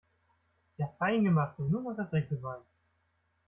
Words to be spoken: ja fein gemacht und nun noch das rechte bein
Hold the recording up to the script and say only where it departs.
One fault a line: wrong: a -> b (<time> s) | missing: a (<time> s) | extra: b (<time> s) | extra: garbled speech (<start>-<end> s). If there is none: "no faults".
no faults